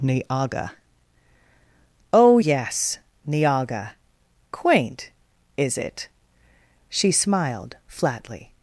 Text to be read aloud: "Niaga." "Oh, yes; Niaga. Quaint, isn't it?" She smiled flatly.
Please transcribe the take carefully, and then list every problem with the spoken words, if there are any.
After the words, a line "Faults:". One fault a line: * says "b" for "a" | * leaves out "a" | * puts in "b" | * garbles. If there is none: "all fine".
"Niaga." "Oh, yes; Niaga. Quaint, is it?" She smiled flatly.
Faults:
* says "is" for "isn't"